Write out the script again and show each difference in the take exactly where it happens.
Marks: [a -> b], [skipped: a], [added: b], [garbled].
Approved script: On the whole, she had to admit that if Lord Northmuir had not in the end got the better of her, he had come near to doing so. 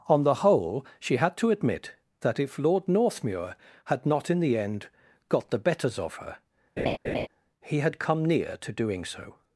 On the whole, she had to admit that if Lord Northmuir had not in the end got the [better -> betters] of her, he had come near to doing so.